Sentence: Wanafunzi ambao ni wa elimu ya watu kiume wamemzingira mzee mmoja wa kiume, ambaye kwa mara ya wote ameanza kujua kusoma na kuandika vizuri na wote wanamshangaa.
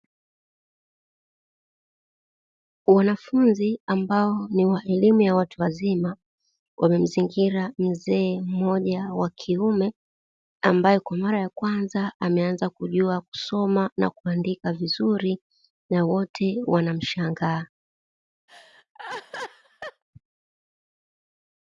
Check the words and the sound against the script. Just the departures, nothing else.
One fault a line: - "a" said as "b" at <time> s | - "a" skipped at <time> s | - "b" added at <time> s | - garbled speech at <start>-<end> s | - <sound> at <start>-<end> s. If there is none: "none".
- "kiume" said as "wazima" at 5.6 s
- "wote" said as "kwanza" at 11.5 s
- laugh at 18.5-20.0 s